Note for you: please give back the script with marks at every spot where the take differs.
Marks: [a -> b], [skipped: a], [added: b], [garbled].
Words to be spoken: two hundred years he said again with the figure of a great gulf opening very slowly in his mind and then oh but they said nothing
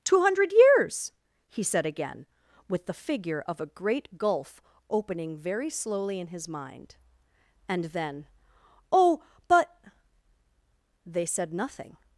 two hundred years he said again with the figure of a great gulf opening very slowly in his mind and then oh but they said nothing